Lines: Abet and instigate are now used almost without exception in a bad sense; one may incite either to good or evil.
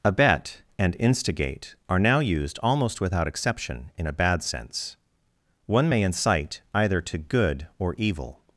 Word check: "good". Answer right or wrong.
right